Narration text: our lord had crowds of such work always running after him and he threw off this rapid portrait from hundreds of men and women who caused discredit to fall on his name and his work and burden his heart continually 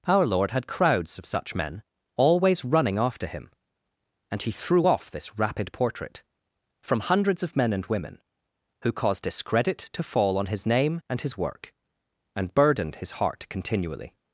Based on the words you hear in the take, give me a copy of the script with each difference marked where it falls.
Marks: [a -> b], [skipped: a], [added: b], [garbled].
our lord had crowds of such [work -> men] always running after him and he threw off this rapid portrait from hundreds of men and women who caused discredit to fall on his name and his work and [burden -> burdened] his heart continually